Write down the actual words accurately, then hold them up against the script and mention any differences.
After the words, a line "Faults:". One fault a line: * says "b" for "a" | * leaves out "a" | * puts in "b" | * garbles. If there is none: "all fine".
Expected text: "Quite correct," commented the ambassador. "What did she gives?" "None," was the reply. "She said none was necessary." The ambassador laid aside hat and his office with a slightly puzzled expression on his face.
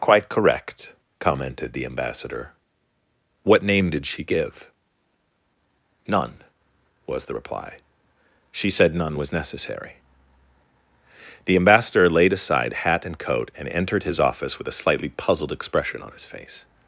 "Quite correct," commented the ambassador. "What name did she give?" "None," was the reply. "She said none was necessary." The ambassador laid aside hat and coat and entered his office with a slightly puzzled expression on his face.
Faults:
* puts in "name"
* says "give" for "gives"
* puts in "coat and entered"